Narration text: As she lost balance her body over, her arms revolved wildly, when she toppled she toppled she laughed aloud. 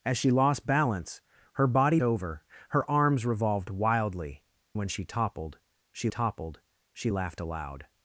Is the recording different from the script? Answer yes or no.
no